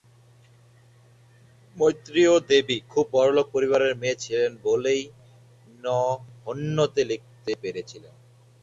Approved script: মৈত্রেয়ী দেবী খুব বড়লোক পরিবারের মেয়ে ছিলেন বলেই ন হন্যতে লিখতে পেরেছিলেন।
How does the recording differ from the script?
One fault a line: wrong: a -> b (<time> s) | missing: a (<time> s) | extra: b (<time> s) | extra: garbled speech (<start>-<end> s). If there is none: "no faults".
no faults